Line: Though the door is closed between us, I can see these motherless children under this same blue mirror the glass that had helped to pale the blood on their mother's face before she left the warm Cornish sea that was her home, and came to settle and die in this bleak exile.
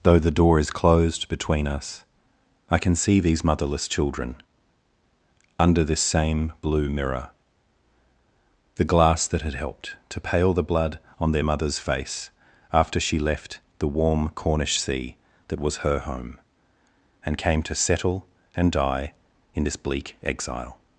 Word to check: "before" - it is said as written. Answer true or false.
false